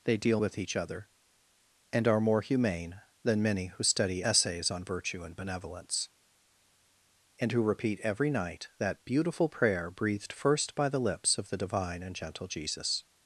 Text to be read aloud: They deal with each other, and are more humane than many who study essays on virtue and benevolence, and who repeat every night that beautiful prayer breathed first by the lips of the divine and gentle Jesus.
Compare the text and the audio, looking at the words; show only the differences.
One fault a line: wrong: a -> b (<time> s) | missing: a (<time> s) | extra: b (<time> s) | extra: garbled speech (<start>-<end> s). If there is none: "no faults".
no faults